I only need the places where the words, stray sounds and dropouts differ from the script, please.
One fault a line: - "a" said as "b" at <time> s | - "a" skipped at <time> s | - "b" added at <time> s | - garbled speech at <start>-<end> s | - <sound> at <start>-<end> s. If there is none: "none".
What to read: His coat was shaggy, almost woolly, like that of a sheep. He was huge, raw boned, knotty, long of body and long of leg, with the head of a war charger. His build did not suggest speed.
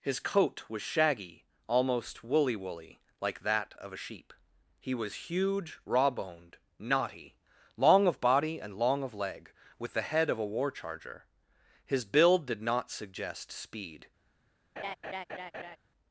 - "woolly" added at 2.5 s
- laugh at 14.8-15.8 s